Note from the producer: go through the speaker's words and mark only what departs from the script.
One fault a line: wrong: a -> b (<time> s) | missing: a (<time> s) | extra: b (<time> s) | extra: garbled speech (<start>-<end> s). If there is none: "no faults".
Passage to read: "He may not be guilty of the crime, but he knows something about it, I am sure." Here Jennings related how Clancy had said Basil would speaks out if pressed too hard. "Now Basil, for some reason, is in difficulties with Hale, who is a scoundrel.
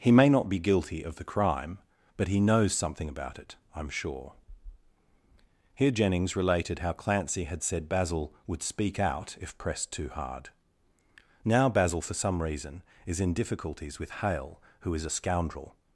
wrong: speaks -> speak (8.6 s)